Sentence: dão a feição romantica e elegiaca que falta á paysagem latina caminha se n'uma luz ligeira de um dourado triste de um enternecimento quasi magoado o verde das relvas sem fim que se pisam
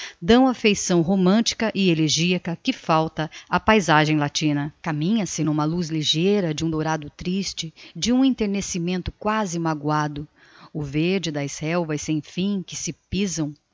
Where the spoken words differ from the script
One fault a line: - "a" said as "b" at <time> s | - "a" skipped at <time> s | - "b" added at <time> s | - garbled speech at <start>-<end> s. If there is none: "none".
none